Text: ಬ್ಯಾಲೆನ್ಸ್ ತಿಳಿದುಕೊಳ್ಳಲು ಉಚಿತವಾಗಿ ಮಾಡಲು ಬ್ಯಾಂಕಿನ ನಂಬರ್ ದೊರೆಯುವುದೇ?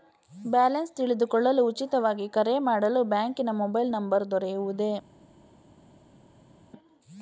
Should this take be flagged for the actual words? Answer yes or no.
yes